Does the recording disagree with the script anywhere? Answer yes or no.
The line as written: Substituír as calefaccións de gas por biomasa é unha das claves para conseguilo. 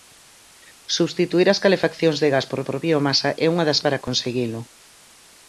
yes